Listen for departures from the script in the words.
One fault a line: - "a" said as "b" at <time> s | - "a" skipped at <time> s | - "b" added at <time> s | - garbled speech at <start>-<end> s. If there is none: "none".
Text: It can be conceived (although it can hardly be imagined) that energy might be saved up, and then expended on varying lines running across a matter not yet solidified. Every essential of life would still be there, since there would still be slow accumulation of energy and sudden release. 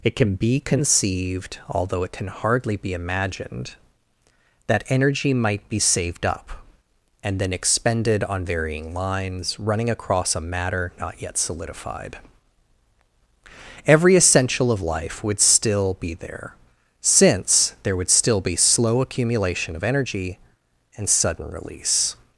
none